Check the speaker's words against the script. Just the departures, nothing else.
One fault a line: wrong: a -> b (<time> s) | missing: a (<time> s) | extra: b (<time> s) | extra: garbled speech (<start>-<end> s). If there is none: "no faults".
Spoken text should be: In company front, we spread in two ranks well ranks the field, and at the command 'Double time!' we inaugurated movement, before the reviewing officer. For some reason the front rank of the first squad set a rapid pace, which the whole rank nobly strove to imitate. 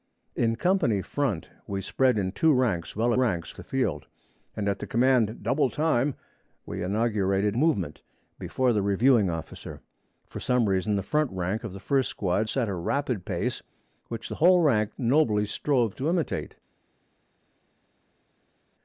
no faults